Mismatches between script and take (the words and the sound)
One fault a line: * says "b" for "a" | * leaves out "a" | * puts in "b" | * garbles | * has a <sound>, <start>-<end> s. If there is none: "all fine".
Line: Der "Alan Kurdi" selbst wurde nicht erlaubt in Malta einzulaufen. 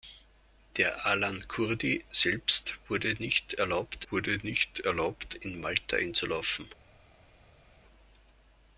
* puts in "wurde nicht erlaubt"